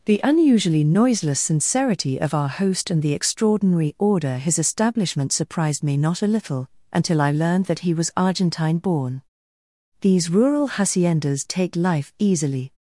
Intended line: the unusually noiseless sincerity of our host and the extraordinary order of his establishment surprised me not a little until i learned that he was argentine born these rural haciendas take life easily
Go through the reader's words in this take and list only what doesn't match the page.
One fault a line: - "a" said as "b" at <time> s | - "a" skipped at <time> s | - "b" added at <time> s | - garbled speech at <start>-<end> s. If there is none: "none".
- "of" skipped at 4.4 s